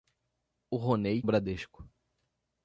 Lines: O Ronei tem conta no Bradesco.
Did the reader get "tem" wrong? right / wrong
wrong